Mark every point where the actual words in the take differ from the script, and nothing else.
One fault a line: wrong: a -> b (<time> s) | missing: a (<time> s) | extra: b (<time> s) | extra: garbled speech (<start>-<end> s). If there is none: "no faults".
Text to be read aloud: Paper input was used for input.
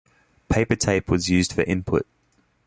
wrong: input -> tape (0.8 s)